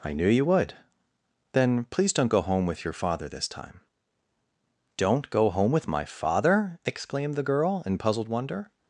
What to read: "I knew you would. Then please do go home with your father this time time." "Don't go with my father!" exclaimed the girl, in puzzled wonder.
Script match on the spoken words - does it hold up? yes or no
no